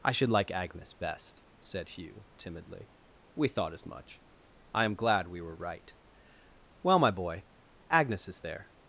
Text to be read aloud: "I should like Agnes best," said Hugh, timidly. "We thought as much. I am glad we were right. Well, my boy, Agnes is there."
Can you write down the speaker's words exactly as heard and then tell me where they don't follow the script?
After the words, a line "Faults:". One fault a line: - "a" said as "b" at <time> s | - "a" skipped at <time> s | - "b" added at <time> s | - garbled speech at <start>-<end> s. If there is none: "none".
"I should like Agnes best," said Hugh, timidly. "We thought as much. I am glad we were right. Well, my boy, Agnes is there."
Faults:
none